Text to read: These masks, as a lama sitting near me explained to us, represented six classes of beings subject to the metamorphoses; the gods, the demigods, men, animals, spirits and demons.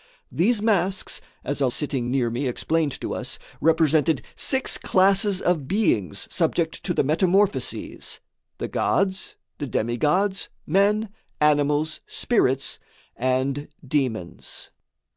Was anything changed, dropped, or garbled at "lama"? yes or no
yes